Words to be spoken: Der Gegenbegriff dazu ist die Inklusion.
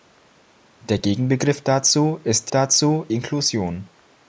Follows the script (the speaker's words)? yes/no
no